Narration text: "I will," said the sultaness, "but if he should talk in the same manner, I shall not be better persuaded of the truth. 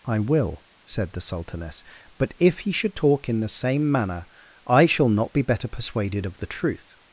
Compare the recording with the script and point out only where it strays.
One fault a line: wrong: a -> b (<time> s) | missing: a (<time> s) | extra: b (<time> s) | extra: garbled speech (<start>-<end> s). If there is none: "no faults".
no faults